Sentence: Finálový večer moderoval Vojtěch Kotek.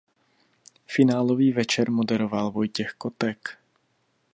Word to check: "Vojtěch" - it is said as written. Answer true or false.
true